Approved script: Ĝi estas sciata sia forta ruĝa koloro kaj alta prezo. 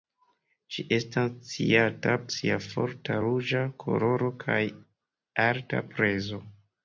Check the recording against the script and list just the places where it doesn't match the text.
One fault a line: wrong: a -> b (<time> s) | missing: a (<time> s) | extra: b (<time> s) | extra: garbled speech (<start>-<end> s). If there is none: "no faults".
no faults